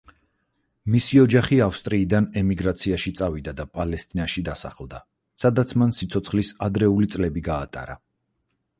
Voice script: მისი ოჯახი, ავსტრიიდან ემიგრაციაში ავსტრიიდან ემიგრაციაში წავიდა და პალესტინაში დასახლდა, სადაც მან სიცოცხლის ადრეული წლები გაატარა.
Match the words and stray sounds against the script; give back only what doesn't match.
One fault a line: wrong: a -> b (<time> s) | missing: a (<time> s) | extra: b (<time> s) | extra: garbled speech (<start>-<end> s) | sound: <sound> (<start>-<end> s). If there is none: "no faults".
missing: ავსტრიიდან ემიგრაციაში (3.1 s)